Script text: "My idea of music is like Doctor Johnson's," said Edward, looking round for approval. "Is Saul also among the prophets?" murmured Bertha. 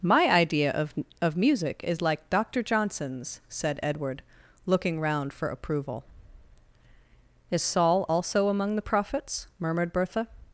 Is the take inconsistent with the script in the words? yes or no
yes